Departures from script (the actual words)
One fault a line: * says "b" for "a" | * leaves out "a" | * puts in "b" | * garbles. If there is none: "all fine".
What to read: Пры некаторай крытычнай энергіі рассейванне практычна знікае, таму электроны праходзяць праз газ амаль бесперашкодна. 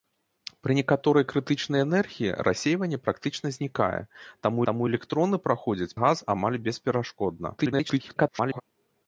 * puts in "таму"
* leaves out "праз"
* garbles